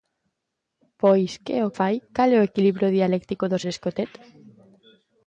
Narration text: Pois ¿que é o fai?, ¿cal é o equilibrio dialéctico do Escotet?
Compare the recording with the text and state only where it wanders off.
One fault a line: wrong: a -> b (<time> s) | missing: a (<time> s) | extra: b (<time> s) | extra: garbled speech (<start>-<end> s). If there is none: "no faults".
no faults